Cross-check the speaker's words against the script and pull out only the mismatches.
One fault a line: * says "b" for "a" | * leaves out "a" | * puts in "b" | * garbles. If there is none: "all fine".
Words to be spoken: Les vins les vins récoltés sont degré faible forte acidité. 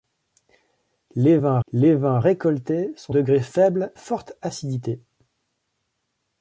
all fine